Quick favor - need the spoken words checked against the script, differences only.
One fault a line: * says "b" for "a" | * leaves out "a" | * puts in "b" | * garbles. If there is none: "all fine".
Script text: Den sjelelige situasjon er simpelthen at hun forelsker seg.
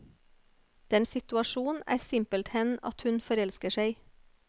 * leaves out "sjelelige"